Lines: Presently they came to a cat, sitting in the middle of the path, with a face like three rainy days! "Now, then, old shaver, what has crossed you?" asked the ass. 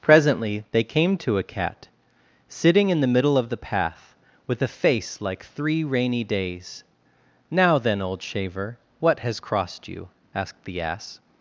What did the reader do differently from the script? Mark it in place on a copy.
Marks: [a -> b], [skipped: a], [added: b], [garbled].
Presently they came to a cat, sitting in the middle of the path, with a face like three rainy days! "Now, then, old shaver, what has crossed you?" asked the ass.